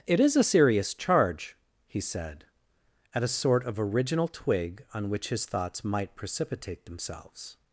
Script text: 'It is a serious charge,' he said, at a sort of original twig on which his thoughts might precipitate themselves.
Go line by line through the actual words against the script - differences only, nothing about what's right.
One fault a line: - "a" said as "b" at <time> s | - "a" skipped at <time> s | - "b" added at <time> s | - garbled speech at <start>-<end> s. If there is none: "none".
none